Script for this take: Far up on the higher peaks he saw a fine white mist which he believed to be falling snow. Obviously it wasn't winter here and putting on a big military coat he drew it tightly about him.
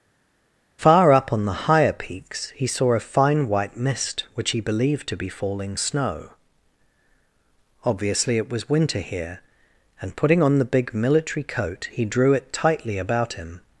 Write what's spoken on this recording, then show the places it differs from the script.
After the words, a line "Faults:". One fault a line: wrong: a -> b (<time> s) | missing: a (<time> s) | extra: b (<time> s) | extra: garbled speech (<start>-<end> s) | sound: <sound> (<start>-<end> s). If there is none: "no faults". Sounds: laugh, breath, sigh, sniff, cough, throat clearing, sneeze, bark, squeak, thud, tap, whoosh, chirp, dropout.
Far up on the higher peaks he saw a fine white mist which he believed to be falling snow. Obviously it was winter here and putting on the big military coat he drew it tightly about him.
Faults:
wrong: wasn't -> was (8.5 s)
wrong: a -> the (10.6 s)